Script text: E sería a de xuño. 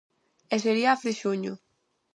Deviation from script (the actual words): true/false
false